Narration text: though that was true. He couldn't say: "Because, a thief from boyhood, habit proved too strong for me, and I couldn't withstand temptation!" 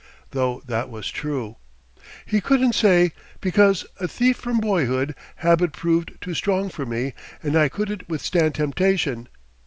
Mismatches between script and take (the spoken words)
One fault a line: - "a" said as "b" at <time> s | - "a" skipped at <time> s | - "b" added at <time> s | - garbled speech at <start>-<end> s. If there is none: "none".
none